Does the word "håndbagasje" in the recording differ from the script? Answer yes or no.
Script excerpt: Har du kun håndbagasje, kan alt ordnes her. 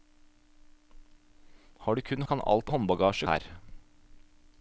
yes